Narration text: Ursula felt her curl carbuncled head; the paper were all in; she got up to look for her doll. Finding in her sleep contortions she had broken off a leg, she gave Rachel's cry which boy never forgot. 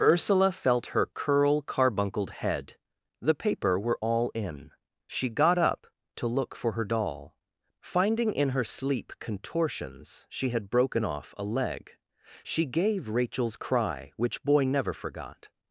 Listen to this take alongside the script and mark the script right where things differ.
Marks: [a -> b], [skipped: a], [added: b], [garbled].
Ursula felt her curl carbuncled head; the paper were all in; she got up to look for her doll. Finding in her sleep contortions she had broken off a leg, she gave Rachel's cry which boy never forgot.